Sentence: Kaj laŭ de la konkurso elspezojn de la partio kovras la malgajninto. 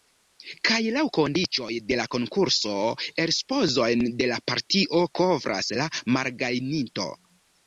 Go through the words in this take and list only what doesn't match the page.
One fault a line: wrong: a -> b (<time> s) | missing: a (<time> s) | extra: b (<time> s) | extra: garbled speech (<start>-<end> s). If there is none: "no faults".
extra: kondiĉoj (1.2 s)